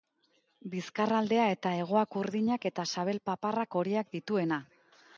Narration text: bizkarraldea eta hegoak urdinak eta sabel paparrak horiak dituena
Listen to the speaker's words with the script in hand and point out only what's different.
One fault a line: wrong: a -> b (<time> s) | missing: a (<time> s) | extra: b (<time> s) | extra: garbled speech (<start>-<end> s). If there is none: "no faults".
no faults